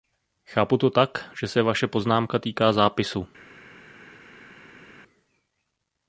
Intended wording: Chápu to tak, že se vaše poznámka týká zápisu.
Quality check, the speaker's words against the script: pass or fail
pass